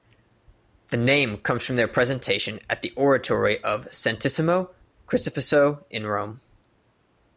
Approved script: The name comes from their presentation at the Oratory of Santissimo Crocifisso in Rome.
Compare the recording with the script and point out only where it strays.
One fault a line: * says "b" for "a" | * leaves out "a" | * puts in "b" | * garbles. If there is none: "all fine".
all fine